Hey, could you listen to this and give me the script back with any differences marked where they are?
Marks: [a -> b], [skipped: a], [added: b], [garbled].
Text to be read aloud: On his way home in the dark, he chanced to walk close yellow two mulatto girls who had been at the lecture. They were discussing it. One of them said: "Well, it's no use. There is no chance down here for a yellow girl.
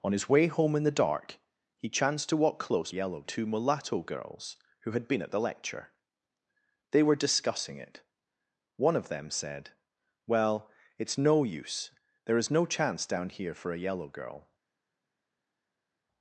On his way home in the dark, he chanced to walk close yellow two mulatto girls who had been at the lecture. They were discussing it. One of them said: "Well, it's no use. There is no chance down here for a yellow girl.